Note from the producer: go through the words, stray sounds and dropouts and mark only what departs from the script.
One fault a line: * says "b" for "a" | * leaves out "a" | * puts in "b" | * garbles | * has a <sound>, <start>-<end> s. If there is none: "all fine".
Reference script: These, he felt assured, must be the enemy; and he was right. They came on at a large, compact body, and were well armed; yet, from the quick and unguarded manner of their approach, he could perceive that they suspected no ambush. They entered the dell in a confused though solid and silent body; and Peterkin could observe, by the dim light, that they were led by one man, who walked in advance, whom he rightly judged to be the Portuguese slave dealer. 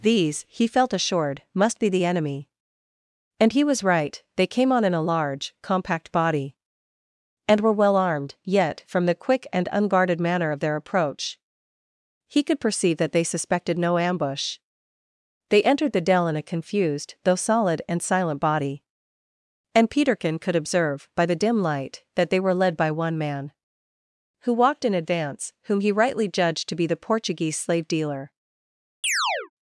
* says "in" for "at"
* has a chirp, 29.0-29.5 s